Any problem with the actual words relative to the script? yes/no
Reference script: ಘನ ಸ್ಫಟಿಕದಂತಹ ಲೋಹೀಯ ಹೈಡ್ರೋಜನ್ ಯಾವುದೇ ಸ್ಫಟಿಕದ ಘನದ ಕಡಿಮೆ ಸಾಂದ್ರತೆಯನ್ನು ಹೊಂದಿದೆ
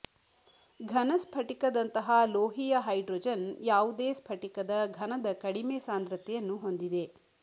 no